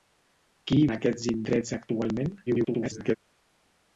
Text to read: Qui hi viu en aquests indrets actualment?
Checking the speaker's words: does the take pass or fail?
fail